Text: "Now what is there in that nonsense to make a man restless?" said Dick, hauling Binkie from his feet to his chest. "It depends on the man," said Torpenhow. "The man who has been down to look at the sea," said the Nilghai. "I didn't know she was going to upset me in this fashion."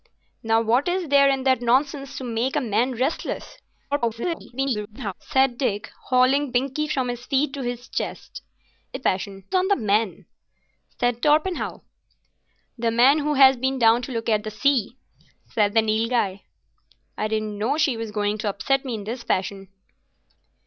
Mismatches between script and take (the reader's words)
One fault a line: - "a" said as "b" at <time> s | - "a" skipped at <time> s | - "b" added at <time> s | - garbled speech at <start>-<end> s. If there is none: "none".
- garbled speech at 3.9-5.1 s
- "depends" said as "fashion" at 9.0 s